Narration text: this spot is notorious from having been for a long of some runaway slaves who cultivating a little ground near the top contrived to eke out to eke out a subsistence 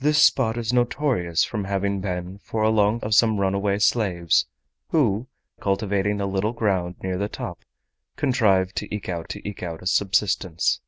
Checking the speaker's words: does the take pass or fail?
pass